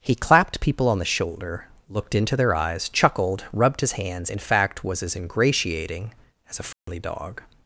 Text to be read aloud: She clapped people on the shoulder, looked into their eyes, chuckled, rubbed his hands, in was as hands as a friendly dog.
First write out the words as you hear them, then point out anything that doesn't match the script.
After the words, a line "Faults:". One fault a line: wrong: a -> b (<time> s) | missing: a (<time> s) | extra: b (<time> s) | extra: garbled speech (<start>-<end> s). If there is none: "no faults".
He clapped people on the shoulder, looked into their eyes, chuckled, rubbed his hands, in fact was as ingratiating as a friendly dog.
Faults:
wrong: She -> He (0.0 s)
extra: fact (4.4 s)
wrong: hands -> ingratiating (5.1 s)